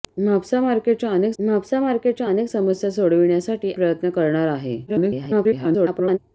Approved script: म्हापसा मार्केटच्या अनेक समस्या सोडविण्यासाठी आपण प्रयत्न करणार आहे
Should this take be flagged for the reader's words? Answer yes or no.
yes